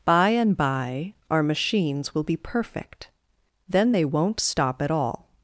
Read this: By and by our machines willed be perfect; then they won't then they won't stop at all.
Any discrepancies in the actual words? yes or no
yes